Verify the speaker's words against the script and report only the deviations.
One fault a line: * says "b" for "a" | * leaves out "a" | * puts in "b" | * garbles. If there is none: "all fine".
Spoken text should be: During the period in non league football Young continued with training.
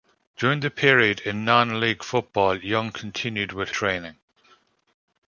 all fine